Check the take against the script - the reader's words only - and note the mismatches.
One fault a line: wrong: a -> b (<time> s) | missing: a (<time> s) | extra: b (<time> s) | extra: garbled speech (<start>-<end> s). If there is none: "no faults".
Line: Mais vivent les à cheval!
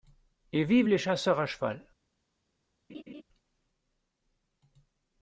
wrong: Mais -> Et (0.5 s)
extra: chasseurs (1.0 s)